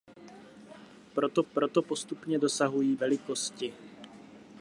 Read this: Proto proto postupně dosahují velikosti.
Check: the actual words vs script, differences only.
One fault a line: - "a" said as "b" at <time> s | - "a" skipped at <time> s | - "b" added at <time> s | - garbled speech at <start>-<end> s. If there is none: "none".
none